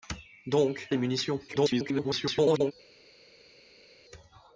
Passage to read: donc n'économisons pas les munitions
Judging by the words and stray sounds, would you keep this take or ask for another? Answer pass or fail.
fail